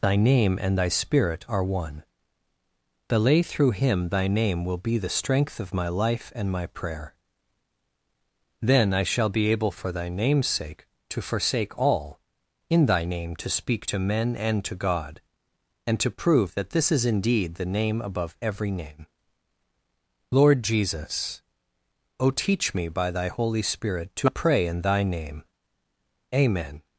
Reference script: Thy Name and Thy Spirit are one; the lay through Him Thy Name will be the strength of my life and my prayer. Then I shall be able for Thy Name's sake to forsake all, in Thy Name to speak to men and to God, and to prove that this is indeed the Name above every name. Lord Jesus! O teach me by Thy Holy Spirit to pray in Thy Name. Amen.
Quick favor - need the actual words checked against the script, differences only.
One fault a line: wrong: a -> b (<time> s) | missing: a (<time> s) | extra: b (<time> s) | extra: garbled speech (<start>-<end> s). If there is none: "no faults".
no faults